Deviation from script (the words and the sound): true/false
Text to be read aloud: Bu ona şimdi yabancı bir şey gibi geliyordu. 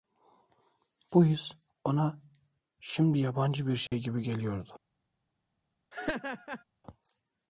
true